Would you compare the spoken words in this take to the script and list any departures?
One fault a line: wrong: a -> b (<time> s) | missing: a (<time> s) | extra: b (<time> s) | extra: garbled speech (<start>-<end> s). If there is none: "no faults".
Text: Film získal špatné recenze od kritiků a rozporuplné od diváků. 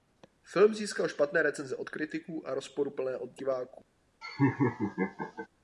no faults